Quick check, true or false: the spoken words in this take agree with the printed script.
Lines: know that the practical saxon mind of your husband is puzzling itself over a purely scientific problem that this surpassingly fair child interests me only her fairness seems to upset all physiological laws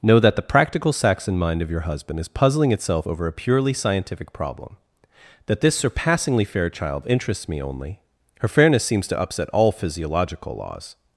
true